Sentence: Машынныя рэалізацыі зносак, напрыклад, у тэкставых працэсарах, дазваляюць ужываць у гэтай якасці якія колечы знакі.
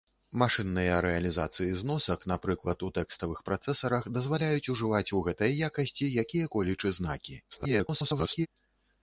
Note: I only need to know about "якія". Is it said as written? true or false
true